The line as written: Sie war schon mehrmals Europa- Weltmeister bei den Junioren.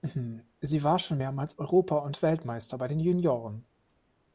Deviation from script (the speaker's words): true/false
true